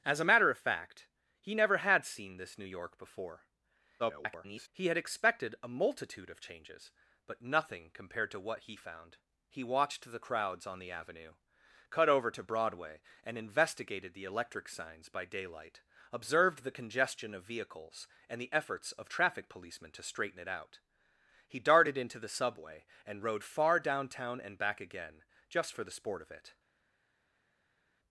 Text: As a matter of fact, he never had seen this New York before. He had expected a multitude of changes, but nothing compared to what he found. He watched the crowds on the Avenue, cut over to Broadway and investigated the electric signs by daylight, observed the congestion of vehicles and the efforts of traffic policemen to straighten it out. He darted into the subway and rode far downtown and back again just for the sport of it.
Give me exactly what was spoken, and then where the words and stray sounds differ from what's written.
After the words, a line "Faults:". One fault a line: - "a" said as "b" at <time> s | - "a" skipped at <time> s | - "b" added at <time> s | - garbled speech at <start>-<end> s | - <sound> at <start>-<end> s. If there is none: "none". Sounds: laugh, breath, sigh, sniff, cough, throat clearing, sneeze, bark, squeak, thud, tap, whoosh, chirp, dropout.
As a matter of fact, he never had seen this New York before. [garbled] He had expected a multitude of changes, but nothing compared to what he found. He watched the crowds on the Avenue, cut over to Broadway and investigated the electric signs by daylight, observed the congestion of vehicles and the efforts of traffic policemen to straighten it out. He darted into the subway and rode far downtown and back again just for the sport of it.
Faults:
- garbled speech at 4.0-4.7 s